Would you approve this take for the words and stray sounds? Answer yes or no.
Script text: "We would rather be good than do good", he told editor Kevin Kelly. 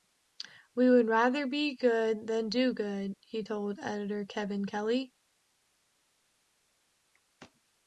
yes